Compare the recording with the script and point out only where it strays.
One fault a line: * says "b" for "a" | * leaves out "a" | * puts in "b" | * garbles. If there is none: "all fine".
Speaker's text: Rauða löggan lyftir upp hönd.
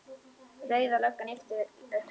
all fine